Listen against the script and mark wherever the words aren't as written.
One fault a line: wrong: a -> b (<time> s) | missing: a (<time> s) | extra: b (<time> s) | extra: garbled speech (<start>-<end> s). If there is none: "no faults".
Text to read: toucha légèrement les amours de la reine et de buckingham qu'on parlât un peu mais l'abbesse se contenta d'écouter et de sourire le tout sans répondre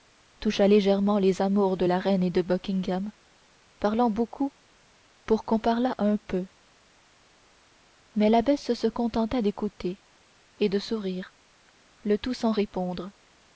extra: parlant beaucoup pour (3.8 s)